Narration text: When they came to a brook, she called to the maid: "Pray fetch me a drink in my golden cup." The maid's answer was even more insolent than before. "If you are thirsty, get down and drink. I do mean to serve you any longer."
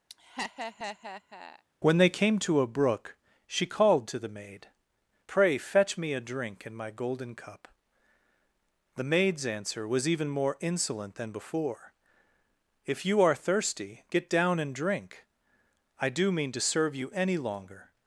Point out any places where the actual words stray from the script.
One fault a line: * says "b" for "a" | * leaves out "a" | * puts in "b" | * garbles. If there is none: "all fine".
all fine